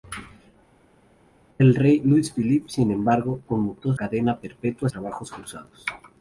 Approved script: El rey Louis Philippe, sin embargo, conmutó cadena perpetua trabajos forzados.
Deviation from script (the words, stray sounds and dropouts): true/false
false